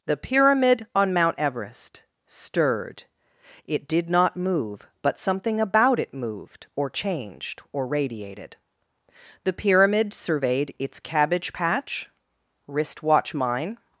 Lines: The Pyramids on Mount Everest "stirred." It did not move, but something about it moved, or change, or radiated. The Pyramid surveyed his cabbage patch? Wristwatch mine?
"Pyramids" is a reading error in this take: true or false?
true